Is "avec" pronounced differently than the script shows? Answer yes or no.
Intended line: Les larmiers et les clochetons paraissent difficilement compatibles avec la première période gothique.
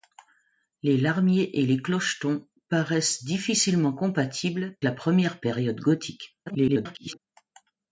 yes